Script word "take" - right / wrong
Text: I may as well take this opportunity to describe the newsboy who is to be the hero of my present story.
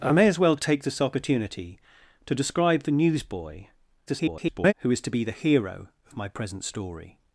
right